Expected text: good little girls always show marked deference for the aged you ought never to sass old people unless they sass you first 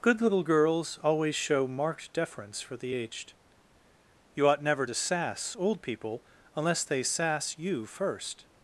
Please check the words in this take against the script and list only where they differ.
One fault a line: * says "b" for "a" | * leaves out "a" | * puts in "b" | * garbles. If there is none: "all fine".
all fine